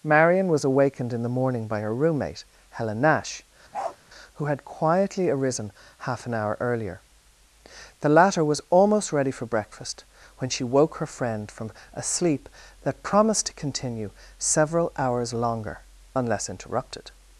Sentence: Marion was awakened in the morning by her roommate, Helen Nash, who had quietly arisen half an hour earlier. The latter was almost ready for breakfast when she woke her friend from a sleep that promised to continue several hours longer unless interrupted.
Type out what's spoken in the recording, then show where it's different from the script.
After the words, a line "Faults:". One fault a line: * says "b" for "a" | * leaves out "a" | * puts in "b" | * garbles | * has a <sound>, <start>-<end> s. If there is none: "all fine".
Marion was awakened in the morning by her roommate, Helen Nash, who had quietly arisen half an hour earlier. The latter was almost ready for breakfast when she woke her friend from a sleep that promised to continue several hours longer unless interrupted.
Faults:
* has a bark, 3.7-4.0 s